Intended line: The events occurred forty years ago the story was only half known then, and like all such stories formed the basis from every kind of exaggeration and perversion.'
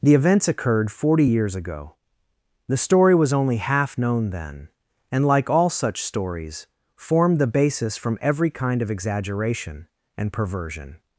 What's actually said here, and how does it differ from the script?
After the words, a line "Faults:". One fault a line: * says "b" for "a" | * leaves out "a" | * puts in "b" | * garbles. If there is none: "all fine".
The events occurred forty years ago the story was only half known then, and like all such stories formed the basis from every kind of exaggeration and perversion.'
Faults:
all fine